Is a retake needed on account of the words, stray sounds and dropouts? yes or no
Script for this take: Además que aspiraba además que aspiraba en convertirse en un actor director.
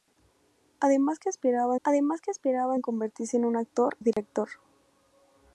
yes